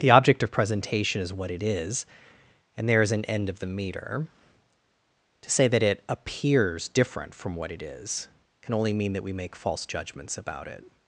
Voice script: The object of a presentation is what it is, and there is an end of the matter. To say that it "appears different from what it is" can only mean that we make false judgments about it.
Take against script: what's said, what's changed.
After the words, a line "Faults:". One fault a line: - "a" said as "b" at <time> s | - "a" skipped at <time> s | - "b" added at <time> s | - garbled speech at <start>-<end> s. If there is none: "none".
The object of presentation is what it is, and there is an end of the meter. To say that it "appears different from what it is" can only mean that we make false judgments about it.
Faults:
- "a" skipped at 0.5 s
- "matter" said as "meter" at 3.7 s